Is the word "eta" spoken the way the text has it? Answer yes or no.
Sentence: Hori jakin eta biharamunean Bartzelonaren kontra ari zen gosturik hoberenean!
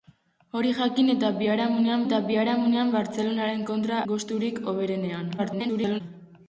yes